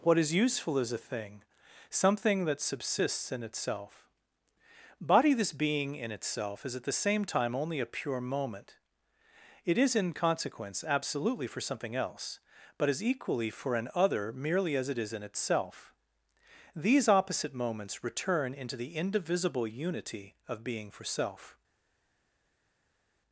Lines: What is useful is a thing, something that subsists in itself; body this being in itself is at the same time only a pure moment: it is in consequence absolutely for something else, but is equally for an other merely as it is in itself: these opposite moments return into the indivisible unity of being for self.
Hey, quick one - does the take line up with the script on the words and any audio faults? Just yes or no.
yes